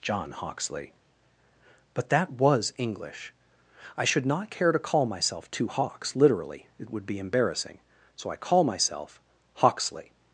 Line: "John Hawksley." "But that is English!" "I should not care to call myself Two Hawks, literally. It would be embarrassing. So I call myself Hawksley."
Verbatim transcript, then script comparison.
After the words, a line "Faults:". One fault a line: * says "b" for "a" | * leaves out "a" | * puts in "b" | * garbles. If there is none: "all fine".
"John Hawksley." "But that was English!" "I should not care to call myself Two Hawks, literally. It would be embarrassing. So I call myself Hawksley."
Faults:
* says "was" for "is"